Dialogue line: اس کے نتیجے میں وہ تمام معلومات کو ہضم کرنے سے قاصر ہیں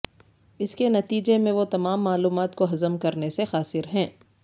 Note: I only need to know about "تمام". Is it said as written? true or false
true